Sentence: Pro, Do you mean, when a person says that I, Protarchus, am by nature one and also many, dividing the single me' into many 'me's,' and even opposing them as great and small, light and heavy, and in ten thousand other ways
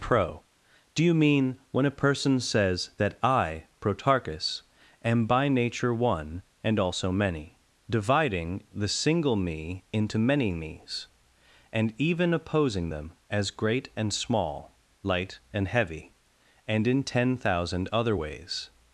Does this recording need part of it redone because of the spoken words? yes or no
no